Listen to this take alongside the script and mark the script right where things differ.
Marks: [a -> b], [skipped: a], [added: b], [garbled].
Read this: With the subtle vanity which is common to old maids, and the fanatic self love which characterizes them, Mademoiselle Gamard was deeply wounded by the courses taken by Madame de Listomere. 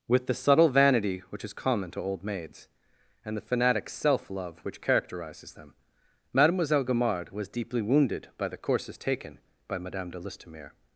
With the subtle vanity which is common to old maids, and the fanatic self love which characterizes them, Mademoiselle Gamard was deeply wounded by the courses taken by Madame de Listomere.